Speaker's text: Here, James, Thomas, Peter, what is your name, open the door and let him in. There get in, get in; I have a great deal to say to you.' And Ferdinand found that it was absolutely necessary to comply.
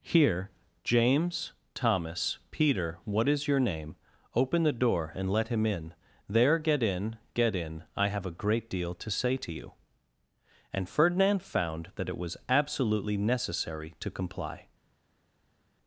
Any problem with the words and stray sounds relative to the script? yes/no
no